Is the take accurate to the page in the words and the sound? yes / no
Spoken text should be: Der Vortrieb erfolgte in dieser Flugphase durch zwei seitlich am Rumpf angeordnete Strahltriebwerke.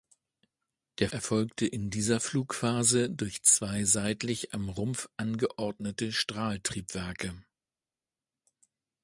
no